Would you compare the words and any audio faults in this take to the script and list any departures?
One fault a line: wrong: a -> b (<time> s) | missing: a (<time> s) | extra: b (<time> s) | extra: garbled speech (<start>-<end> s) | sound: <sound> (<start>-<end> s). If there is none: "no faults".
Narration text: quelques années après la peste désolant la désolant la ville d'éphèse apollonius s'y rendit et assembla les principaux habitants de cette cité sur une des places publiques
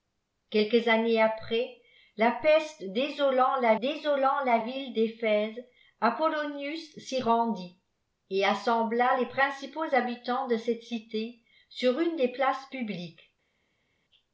no faults